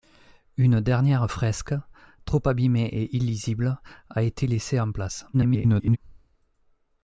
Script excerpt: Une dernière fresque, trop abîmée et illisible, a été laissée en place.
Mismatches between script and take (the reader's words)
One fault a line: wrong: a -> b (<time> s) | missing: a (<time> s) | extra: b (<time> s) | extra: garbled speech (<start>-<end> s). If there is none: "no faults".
extra: garbled speech (5.3-6.0 s)